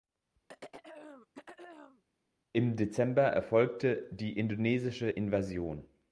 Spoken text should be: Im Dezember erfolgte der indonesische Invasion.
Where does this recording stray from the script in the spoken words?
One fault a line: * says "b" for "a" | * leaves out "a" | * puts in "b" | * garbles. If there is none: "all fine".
* says "die" for "der"